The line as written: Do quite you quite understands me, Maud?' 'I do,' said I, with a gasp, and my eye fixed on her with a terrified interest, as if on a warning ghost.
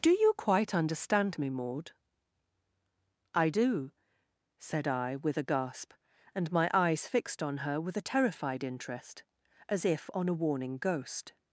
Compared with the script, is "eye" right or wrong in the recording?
wrong